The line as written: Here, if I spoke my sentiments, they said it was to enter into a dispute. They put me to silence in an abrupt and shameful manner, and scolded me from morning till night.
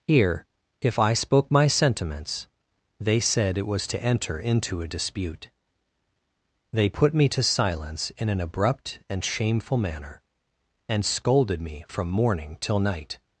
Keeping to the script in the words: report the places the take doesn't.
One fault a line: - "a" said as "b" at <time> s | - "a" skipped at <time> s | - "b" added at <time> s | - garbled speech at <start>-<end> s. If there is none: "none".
none